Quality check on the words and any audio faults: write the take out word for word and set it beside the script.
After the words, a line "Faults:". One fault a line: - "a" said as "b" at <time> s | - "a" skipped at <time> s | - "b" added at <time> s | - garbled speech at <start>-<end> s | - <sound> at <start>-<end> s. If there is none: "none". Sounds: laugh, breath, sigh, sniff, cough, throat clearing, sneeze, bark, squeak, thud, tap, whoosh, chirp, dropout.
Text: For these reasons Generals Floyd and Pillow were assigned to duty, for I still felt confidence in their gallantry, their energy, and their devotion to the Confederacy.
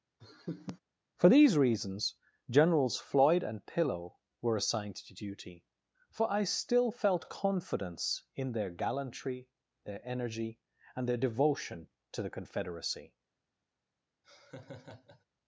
For these reasons Generals Floyd and Pillow were assigned to duty, for I still felt confidence in their gallantry, their energy, and their devotion to the Confederacy.
Faults:
- laugh at 0.2-0.8 s
- laugh at 14.2-15.2 s